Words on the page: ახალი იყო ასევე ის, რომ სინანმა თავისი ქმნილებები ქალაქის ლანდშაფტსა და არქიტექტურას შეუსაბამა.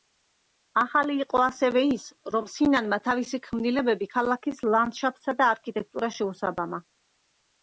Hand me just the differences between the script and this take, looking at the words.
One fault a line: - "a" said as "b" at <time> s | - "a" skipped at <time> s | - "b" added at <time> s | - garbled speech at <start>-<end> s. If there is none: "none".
none